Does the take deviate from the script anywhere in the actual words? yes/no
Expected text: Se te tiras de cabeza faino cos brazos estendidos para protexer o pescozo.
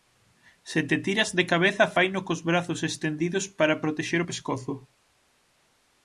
no